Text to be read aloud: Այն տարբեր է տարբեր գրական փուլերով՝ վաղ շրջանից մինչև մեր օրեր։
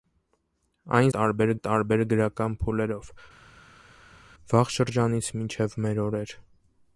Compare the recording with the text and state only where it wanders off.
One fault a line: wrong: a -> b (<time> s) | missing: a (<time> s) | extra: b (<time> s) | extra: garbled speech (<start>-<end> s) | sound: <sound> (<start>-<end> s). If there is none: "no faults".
no faults